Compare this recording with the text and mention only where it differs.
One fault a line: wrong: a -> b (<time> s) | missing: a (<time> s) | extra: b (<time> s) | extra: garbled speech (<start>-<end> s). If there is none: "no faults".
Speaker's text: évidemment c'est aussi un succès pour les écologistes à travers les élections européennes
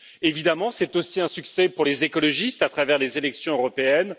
no faults